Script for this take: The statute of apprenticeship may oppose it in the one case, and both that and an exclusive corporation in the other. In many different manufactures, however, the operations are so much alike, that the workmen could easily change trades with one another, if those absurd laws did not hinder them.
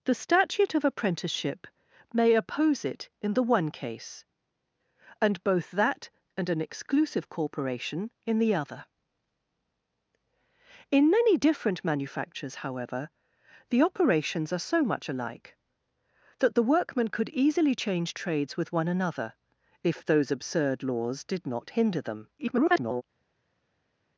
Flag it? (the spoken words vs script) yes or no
yes